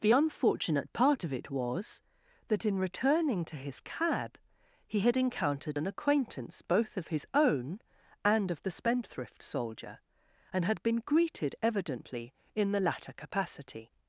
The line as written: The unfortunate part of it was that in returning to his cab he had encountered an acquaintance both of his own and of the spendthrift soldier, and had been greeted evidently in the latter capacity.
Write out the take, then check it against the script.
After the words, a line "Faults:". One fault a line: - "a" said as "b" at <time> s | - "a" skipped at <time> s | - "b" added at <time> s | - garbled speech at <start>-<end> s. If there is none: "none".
The unfortunate part of it was that in returning to his cab he had encountered an acquaintance both of his own and of the spendthrift soldier, and had been greeted evidently in the latter capacity.
Faults:
none